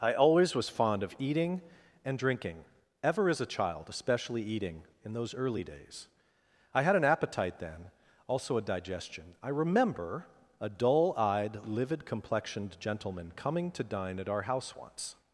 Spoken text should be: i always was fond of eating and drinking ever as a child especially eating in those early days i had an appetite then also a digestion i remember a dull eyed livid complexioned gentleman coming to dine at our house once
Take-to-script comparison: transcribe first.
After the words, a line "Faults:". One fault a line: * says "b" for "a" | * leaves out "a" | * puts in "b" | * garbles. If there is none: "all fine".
i always was fond of eating and drinking ever as a child especially eating in those early days i had an appetite then also a digestion i remember a dull eyed livid complexioned gentleman coming to dine at our house once
Faults:
all fine